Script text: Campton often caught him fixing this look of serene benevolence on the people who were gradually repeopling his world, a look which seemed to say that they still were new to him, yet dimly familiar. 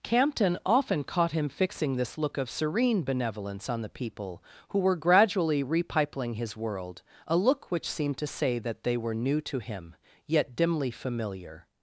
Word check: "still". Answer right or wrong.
wrong